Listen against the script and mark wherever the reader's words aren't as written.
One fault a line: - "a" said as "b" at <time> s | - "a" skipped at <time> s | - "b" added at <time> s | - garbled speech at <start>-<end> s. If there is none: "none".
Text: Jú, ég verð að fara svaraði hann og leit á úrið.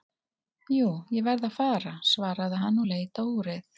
none